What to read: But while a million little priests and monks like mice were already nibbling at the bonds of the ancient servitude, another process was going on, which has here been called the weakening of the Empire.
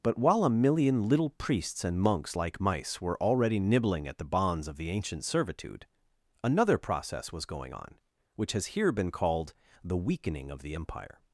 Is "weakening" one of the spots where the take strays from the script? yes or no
no